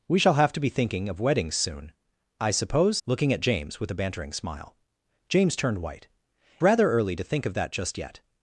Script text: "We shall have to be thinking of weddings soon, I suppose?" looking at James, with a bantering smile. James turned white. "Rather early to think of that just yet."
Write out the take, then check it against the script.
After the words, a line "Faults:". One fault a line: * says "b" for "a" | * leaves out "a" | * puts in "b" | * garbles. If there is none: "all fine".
"We shall have to be thinking of weddings soon, I suppose?" looking at James, with a bantering smile. James turned white. "Rather early to think of that just yet."
Faults:
all fine